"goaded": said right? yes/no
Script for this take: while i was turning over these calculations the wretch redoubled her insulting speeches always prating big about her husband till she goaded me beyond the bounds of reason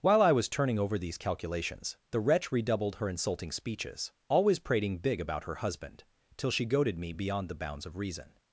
yes